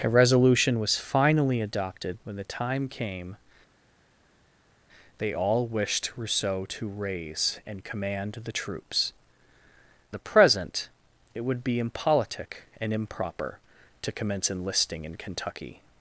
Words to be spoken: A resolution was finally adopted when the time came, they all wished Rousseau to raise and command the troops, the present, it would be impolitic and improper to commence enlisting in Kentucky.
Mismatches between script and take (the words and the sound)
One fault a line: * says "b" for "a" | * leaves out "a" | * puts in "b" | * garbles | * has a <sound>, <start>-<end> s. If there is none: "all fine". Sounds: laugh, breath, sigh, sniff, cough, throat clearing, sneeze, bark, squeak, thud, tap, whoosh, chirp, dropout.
all fine